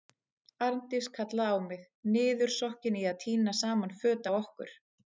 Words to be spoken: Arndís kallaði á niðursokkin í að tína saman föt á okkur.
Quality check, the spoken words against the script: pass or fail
fail